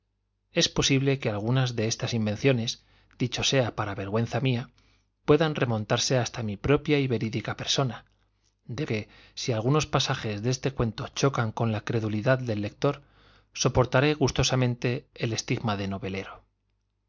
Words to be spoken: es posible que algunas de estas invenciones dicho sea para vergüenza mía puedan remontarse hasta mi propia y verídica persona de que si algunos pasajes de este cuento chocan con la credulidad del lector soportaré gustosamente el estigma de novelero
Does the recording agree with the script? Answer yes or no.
yes